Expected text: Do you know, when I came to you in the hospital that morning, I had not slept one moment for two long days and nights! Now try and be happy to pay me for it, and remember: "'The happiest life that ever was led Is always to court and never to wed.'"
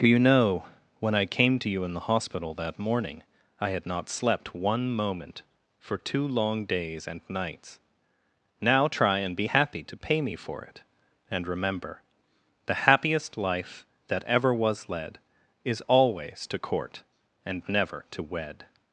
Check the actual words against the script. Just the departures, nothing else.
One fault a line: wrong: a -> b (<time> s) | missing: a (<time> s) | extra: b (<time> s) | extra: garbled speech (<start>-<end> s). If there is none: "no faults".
no faults